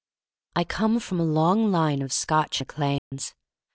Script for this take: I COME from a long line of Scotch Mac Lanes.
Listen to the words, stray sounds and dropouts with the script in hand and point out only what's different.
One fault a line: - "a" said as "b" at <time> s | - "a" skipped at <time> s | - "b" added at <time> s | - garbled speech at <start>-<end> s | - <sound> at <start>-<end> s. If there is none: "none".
- dropout at 3.0-3.1 s